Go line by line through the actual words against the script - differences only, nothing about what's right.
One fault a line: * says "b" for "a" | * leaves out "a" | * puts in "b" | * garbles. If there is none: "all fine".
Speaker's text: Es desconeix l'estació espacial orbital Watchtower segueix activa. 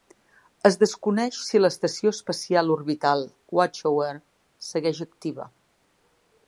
* puts in "si"